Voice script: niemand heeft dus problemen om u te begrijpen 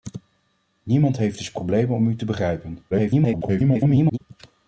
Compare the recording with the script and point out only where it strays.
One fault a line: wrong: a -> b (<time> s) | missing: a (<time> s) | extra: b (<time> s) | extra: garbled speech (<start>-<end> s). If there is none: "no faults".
extra: garbled speech (2.9-4.2 s)